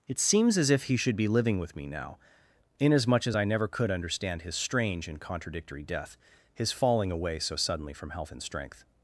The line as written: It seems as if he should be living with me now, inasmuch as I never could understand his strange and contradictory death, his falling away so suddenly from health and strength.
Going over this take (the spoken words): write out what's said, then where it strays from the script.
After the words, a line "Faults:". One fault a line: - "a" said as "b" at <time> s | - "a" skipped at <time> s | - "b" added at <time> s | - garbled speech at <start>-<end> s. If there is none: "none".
It seems as if he should be living with me now, inasmuch as I never could understand his strange and contradictory death, his falling away so suddenly from health and strength.
Faults:
none